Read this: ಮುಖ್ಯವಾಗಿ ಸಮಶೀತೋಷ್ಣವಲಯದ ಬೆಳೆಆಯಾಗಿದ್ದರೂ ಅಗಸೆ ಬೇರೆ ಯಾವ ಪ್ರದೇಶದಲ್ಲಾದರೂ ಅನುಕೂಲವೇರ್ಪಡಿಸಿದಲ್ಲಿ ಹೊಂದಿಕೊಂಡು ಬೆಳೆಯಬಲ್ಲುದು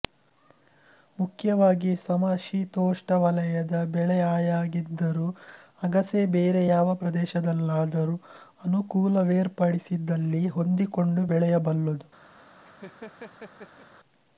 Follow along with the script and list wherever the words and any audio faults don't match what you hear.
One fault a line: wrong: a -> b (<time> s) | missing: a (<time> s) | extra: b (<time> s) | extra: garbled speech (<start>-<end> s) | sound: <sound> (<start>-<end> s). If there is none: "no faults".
sound: laugh (12.6-13.9 s)